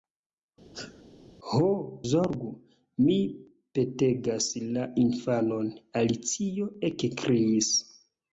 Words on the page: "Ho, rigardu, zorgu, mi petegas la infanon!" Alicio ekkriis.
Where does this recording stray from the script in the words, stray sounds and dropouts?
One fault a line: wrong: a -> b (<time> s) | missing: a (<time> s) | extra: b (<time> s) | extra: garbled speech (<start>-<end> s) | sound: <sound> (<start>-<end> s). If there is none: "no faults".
sound: sneeze (0.7-1.0 s)
missing: rigardu (1.7 s)